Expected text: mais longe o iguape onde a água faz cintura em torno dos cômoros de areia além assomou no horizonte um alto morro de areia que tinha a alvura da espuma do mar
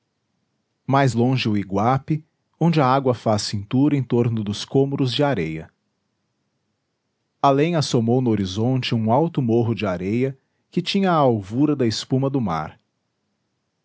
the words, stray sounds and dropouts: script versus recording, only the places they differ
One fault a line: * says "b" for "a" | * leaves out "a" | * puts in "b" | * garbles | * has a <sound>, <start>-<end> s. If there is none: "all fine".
all fine